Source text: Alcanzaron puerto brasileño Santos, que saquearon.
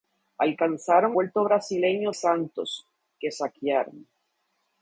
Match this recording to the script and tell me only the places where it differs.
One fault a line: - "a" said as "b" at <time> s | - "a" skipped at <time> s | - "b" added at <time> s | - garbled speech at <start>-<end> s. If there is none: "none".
none